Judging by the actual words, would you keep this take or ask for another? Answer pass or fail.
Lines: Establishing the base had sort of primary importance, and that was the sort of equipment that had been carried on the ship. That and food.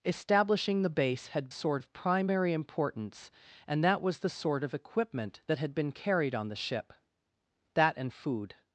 pass